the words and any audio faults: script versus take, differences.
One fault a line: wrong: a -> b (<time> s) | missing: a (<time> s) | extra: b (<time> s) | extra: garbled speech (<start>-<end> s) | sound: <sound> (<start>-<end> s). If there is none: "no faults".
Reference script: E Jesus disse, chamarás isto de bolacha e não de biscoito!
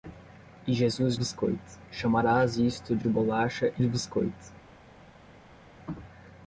wrong: disse -> biscoito (1.1 s)
extra: de (3.0 s)
missing: não (3.8 s)